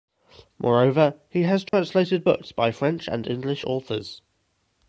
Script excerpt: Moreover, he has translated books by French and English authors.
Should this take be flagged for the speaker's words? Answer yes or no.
no